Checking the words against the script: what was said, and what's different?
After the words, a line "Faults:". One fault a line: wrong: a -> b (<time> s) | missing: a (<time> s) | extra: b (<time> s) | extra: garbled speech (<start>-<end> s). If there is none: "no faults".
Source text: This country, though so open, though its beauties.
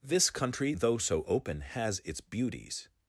This country, though so open, has its beauties.
Faults:
wrong: though -> has (1.6 s)